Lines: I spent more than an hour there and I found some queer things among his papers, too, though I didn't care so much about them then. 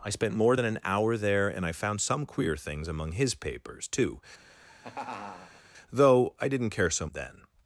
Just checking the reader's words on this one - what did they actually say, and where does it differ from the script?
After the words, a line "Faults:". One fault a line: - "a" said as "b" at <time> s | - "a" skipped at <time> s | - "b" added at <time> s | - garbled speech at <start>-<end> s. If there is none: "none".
I spent more than an hour there and I found some queer things among his papers, too, though I didn't care so then.
Faults:
- "much about them" skipped at 7.1 s